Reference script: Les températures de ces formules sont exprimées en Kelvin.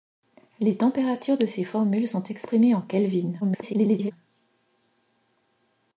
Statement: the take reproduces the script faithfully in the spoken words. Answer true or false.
false